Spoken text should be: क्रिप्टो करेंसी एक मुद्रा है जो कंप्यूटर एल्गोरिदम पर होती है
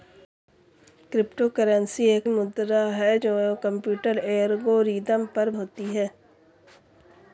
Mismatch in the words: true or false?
false